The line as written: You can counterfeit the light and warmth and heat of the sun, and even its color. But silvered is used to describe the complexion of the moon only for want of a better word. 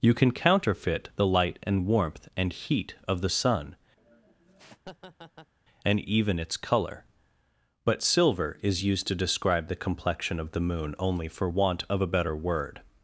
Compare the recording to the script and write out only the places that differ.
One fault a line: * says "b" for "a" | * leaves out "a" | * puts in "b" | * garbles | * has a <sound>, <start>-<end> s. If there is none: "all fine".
* has a laugh, 4.0-5.5 s
* says "silver" for "silvered"